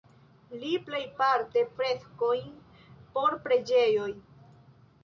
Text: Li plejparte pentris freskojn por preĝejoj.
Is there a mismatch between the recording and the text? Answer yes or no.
yes